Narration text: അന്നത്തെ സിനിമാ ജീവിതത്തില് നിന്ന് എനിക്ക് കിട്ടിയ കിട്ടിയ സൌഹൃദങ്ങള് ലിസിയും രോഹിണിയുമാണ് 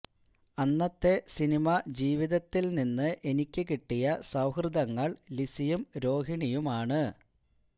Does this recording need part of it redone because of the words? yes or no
yes